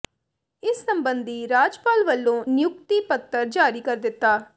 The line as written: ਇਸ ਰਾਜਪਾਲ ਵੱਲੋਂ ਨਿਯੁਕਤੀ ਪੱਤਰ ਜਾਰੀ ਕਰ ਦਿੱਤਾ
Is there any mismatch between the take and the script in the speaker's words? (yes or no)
yes